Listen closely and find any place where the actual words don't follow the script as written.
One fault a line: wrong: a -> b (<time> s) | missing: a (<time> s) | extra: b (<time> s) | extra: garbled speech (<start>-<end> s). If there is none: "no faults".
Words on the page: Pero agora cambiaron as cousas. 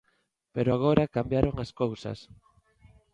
no faults